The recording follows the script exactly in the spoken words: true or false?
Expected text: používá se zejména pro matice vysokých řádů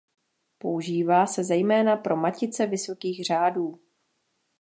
true